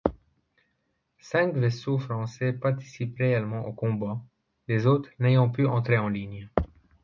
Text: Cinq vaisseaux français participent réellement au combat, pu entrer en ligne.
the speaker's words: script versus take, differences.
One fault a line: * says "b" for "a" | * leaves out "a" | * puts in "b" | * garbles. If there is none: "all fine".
* puts in "les autres n'ayant"